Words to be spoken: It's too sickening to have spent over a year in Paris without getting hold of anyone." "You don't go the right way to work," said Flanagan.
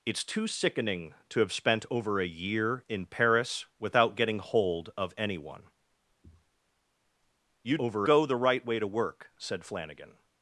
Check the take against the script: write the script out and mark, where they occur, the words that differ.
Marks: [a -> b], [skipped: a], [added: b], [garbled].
It's too sickening to have spent over a year in Paris without getting hold of anyone." "You [don't -> over] go the right way to work," said Flanagan.